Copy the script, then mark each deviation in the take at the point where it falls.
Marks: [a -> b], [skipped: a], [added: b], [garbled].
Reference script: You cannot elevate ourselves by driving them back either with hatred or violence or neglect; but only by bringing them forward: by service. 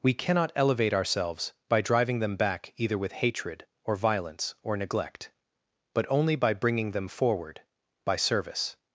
[You -> We] cannot elevate ourselves by driving them back either with hatred or violence or neglect; but only by bringing them forward: by service.